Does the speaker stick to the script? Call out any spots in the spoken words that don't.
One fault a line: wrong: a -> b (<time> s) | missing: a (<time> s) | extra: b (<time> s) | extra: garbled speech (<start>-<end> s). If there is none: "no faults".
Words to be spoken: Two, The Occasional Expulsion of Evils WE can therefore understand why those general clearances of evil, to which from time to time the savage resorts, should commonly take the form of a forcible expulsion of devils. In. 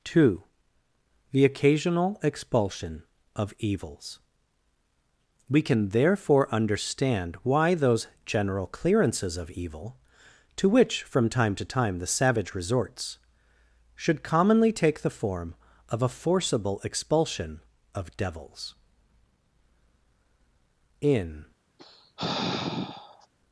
no faults